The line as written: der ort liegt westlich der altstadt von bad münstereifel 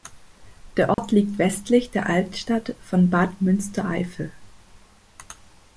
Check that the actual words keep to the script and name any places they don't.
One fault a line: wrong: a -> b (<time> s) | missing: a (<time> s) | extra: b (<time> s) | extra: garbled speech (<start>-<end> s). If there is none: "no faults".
no faults